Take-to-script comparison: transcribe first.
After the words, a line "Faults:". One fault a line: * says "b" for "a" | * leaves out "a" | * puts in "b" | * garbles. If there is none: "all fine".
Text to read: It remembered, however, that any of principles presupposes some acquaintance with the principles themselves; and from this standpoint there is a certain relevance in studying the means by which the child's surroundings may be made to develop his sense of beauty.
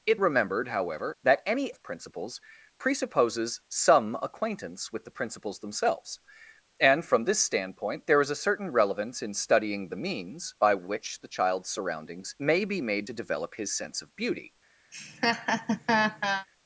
It remembered, however, that any of principles presupposes some acquaintance with the principles themselves; and from this standpoint there is a certain relevance in studying the means by which the child's surroundings may be made to develop his sense of beauty.
Faults:
all fine